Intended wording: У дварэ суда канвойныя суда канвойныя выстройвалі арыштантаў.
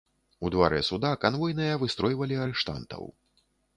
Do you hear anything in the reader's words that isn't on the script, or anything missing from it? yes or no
yes